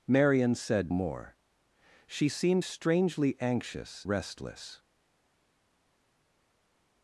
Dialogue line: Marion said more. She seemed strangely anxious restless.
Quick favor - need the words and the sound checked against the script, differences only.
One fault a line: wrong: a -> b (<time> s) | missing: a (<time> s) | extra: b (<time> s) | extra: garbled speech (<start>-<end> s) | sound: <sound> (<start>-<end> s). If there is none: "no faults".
no faults